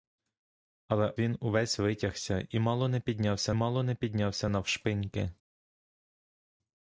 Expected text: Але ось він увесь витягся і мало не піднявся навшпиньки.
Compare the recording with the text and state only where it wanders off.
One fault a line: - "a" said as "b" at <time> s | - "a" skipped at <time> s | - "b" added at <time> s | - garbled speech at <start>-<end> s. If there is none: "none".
- "ось" skipped at 1.1 s
- "мало не піднявся" added at 3.5 s